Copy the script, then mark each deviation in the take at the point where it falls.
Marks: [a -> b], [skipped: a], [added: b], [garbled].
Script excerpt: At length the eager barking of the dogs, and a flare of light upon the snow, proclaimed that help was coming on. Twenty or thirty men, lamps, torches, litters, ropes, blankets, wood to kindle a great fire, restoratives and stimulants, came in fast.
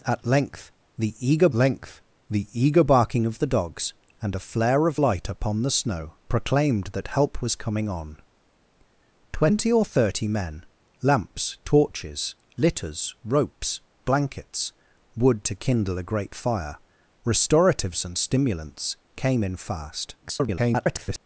At length the eager [added: length the eager] barking of the dogs, and a flare of light upon the snow, proclaimed that help was coming on. Twenty or thirty men, lamps, torches, litters, ropes, blankets, wood to kindle a great fire, restoratives and stimulants, came in fast. [garbled]